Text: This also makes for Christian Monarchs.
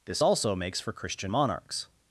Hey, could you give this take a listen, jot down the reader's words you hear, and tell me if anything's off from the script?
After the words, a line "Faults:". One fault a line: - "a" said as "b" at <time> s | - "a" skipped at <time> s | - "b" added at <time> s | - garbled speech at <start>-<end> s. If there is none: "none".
This also makes for Christian Monarchs.
Faults:
none